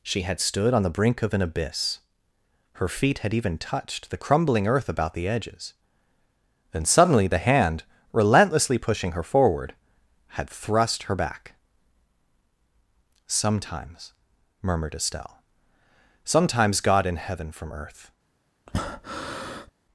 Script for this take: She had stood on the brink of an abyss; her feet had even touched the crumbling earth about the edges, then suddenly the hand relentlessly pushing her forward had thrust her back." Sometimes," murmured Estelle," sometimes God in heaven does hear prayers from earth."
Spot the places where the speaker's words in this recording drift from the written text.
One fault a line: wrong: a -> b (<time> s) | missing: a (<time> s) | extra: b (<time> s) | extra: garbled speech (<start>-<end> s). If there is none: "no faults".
missing: does hear prayers (17.5 s)